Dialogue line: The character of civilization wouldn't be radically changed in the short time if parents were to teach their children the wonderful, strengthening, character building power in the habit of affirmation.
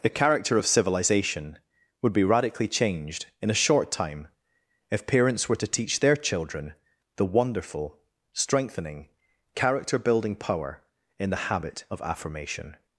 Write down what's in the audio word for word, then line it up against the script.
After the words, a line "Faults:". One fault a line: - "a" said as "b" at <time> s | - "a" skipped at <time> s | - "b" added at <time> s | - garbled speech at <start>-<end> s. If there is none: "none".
The character of civilization would be radically changed in a short time if parents were to teach their children the wonderful, strengthening, character building power in the habit of affirmation.
Faults:
- "wouldn't" said as "would" at 2.0 s
- "the" said as "a" at 3.5 s